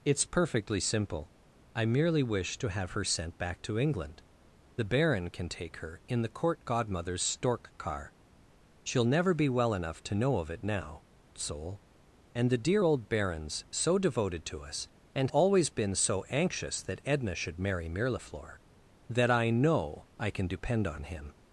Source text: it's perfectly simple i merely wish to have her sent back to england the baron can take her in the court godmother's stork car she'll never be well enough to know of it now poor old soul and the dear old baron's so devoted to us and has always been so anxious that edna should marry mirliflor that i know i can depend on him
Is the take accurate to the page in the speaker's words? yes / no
no